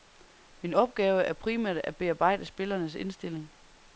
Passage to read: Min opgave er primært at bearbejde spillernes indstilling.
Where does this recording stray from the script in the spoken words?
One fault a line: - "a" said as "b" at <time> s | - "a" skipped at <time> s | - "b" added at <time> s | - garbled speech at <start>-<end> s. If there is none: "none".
none